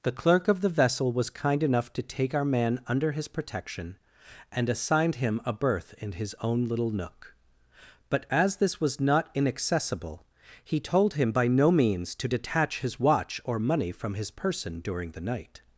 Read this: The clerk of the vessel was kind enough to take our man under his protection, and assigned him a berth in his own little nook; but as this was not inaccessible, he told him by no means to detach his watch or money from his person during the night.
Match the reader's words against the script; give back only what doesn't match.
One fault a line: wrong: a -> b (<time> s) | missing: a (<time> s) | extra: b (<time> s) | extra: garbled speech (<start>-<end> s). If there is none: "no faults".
no faults